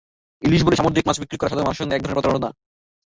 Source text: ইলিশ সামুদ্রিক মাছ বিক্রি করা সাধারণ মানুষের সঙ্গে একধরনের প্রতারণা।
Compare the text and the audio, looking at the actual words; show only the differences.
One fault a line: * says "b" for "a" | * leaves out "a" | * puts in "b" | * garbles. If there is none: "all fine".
* puts in "বলে"